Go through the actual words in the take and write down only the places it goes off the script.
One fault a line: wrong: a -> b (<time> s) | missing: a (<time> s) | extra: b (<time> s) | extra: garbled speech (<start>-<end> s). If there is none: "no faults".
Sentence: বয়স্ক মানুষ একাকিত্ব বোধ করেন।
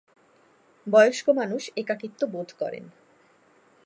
no faults